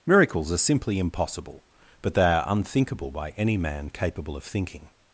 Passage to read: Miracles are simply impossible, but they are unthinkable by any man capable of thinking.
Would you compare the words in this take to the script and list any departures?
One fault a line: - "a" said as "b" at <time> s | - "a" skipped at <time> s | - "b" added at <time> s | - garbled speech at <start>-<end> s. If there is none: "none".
none